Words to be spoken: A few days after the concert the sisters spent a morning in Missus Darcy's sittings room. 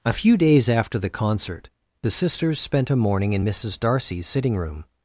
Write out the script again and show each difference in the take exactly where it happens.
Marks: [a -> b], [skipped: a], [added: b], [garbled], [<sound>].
A few days after the concert the sisters spent a morning in Missus Darcy's [sittings -> sitting] room.